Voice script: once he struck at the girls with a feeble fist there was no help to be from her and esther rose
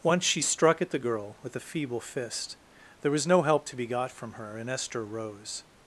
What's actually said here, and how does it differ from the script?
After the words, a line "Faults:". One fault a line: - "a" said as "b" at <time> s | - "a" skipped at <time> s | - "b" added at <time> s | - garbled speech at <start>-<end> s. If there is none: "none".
once she struck at the girl with a feeble fist there was no help to be got from her and esther rose
Faults:
- "he" said as "she" at 0.2 s
- "girls" said as "girl" at 1.0 s
- "got" added at 3.9 s